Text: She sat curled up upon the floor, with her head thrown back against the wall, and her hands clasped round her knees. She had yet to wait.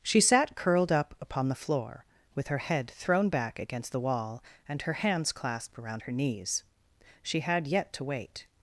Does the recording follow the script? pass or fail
fail